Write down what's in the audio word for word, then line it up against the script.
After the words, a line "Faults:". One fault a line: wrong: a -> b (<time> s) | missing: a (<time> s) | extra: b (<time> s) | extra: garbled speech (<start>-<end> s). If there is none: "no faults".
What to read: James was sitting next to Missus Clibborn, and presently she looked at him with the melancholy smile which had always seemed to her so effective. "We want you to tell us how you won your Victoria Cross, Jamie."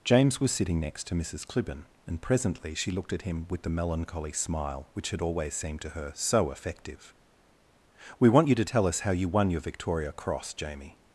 James was sitting next to Missus Clibborn, and presently she looked at him with the melancholy smile which had always seemed to her so effective. "We want you to tell us how you won your Victoria Cross, Jamie."
Faults:
no faults